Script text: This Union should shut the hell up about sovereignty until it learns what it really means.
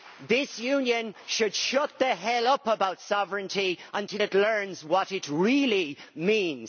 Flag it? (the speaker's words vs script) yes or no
no